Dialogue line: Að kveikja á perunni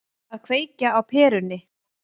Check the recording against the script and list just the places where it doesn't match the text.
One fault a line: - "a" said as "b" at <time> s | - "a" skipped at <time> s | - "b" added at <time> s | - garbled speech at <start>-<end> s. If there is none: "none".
none